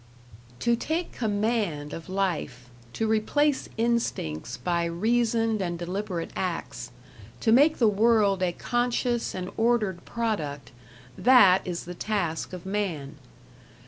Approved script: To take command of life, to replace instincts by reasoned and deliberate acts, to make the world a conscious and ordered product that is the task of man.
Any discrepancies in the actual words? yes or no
no